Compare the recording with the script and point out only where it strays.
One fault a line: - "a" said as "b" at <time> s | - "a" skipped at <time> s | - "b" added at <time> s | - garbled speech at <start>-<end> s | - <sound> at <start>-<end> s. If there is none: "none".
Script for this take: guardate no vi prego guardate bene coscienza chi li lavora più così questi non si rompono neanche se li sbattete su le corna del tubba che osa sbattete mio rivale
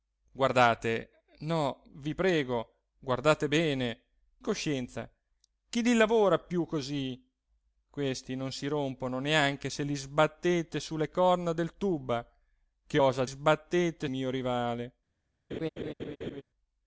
- laugh at 15.5-16.4 s